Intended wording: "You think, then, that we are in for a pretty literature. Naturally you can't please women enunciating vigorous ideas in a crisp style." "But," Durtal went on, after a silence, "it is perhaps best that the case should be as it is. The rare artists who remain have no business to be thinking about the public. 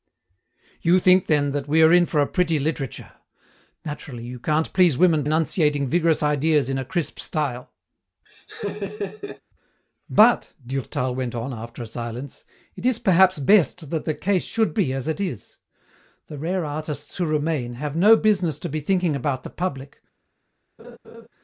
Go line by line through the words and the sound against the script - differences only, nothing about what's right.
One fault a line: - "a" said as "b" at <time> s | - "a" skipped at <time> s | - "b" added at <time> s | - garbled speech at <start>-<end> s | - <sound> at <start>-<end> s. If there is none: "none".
- laugh at 8.3-9.4 s
- laugh at 20.8-21.3 s